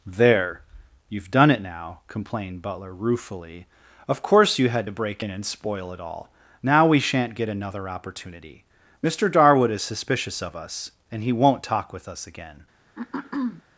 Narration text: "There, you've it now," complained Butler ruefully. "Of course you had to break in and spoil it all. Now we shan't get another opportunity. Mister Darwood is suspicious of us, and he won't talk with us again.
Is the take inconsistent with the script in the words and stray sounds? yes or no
yes